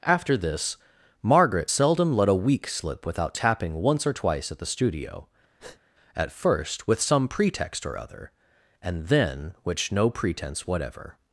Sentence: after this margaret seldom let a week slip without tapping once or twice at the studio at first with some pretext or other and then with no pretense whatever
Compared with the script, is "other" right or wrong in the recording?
right